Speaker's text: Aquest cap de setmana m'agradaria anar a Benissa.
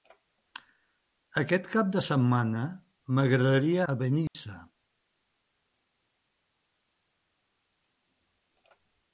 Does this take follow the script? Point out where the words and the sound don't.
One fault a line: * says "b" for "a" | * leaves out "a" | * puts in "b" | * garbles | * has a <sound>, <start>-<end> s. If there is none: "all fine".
* leaves out "anar"
* has a dropout, 4.3-4.3 s